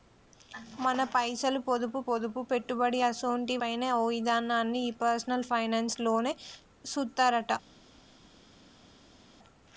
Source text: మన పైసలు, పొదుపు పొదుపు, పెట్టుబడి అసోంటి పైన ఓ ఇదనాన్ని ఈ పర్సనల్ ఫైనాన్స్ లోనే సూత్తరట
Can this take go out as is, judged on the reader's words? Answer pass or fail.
pass